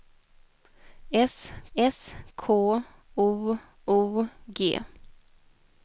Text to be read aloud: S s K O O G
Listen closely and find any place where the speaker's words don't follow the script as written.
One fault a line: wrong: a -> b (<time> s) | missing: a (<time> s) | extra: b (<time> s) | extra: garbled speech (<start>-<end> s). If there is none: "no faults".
no faults